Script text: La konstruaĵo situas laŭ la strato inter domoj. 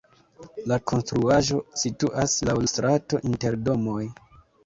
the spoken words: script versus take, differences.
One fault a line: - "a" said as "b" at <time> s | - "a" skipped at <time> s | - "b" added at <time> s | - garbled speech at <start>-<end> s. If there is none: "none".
- "la" skipped at 2.6 s